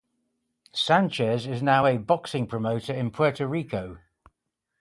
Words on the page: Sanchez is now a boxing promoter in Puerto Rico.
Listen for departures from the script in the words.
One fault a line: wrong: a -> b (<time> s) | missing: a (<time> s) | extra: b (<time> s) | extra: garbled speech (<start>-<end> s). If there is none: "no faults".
no faults